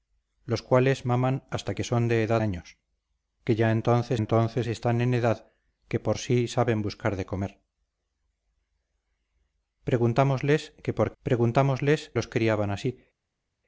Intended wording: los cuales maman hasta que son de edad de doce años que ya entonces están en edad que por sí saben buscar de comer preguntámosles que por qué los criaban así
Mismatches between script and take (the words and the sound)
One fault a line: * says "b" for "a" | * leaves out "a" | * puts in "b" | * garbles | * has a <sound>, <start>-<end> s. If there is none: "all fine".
* leaves out "de doce"
* puts in "entonces"
* says "preguntámosles" for "qué"